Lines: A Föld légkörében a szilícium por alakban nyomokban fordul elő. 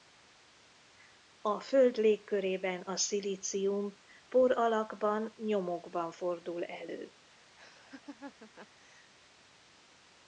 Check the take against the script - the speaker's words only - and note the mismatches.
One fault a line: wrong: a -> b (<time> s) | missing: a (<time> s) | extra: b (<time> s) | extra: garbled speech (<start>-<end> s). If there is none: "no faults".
no faults